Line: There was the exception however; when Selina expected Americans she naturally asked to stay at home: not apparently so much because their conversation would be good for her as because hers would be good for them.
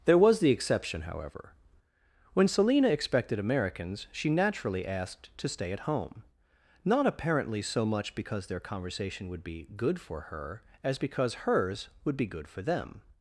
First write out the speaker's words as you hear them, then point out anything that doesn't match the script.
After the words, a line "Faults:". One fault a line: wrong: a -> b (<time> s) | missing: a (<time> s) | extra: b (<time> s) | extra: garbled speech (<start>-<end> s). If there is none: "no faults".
There was the exception however; when Selina expected Americans she naturally asked to stay at home: not apparently so much because their conversation would be good for her as because hers would be good for them.
Faults:
no faults